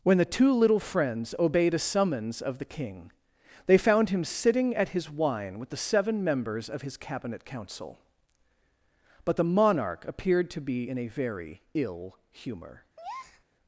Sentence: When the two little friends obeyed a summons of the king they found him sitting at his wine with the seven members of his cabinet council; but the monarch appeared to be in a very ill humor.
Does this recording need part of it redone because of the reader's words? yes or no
no